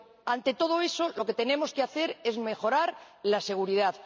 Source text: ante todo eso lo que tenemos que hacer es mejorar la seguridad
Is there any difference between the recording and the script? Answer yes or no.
no